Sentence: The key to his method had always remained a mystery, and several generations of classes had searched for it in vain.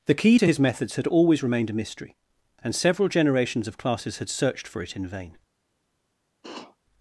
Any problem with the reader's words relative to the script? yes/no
yes